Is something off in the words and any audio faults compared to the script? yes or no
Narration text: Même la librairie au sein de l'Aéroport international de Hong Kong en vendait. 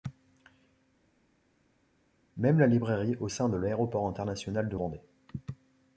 yes